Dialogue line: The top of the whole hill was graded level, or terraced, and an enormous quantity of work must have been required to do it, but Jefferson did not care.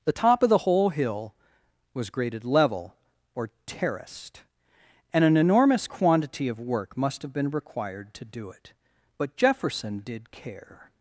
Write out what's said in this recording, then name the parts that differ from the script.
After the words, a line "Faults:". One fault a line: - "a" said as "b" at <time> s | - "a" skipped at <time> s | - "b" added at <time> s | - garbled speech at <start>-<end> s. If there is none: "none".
The top of the whole hill was graded level, or terraced, and an enormous quantity of work must have been required to do it, but Jefferson did care.
Faults:
- "not" skipped at 10.3 s